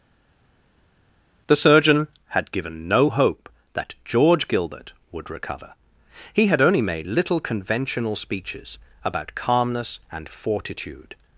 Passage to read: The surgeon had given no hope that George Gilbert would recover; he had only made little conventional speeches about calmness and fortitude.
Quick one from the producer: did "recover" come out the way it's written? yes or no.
yes